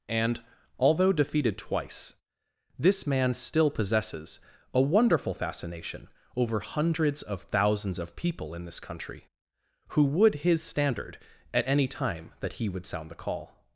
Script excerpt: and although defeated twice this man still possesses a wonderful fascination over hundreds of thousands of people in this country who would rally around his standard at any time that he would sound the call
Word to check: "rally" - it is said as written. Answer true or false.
false